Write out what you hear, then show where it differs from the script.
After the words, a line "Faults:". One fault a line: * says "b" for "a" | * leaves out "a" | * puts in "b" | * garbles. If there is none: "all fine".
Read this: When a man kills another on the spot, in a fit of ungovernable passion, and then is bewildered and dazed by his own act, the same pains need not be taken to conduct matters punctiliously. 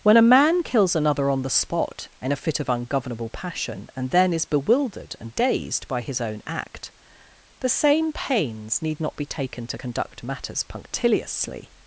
When a man kills another on the spot, in a fit of ungovernable passion, and then is bewildered and dazed by his own act, the same pains need not be taken to conduct matters punctiliously.
Faults:
all fine